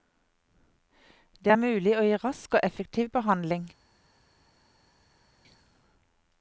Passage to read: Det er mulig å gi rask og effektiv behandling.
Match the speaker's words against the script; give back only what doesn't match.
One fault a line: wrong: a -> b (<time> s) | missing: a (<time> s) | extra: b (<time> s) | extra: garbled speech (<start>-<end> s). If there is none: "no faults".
no faults